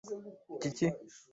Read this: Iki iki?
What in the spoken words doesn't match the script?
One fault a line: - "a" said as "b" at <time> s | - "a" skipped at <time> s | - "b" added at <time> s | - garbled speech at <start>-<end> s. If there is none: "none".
none